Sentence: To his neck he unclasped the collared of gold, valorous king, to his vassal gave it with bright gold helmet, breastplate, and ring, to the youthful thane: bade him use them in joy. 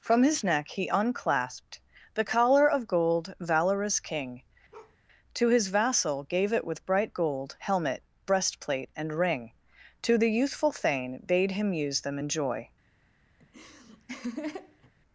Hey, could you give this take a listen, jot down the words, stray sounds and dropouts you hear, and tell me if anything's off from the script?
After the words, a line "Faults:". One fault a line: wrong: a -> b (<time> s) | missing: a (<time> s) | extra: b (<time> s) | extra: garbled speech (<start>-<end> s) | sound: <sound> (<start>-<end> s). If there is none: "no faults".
From his neck he unclasped the collar of gold, valorous king, to his vassal gave it with bright gold helmet, breastplate, and ring, to the youthful thane: bade him use them in joy.
Faults:
wrong: To -> From (0.0 s)
wrong: collared -> collar (2.2 s)
sound: bark (4.7-5.0 s)
sound: laugh (13.4-14.9 s)